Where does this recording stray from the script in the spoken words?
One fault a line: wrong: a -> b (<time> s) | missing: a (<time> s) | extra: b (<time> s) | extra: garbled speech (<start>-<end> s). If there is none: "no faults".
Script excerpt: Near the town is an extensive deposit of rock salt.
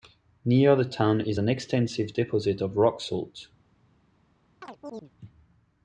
no faults